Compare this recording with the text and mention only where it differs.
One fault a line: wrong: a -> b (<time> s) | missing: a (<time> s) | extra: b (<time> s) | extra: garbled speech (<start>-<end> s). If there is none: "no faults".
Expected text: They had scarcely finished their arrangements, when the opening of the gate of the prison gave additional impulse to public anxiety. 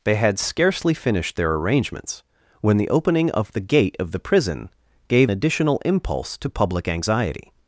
no faults